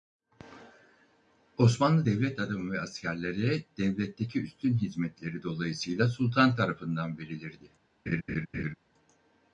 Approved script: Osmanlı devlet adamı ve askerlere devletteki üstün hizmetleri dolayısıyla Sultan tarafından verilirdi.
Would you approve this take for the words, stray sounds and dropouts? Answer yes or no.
no